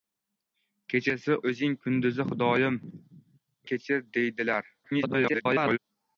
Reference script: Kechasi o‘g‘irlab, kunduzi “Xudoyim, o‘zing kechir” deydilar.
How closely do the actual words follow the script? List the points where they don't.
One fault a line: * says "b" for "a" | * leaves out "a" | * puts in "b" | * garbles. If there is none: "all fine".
* says "o‘zing" for "o‘g‘irlab"
* leaves out "o‘zing"
* garbles